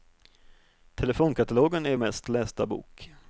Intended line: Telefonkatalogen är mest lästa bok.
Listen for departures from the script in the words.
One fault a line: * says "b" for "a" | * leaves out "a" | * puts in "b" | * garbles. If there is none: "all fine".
all fine